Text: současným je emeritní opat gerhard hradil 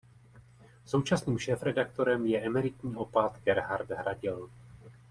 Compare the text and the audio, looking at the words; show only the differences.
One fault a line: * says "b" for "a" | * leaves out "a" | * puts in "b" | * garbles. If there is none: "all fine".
* puts in "šéfredaktorem"